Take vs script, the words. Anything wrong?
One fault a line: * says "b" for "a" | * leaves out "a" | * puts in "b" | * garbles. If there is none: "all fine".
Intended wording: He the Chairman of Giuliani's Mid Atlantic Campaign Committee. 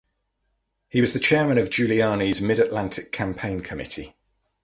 * puts in "was"